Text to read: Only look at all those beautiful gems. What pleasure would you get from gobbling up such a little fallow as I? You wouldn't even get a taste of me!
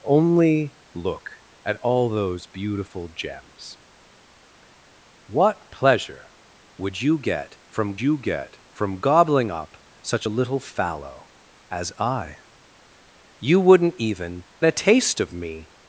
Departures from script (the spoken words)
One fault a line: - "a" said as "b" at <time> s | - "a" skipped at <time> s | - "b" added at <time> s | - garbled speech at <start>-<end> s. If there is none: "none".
- "you get from" added at 8.0 s
- "get" skipped at 14.4 s